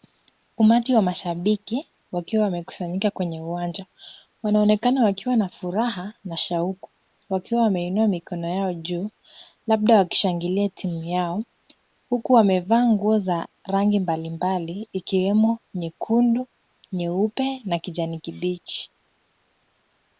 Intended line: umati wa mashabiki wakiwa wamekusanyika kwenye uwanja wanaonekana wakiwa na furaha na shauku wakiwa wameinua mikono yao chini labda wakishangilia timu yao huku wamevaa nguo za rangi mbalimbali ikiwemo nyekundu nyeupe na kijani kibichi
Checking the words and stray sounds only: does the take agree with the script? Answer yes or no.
no